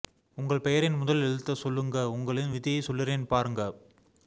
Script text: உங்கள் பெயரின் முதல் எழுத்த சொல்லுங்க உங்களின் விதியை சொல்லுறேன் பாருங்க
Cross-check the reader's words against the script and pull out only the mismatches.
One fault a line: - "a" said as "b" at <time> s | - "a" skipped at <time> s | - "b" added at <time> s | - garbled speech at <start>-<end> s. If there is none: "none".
none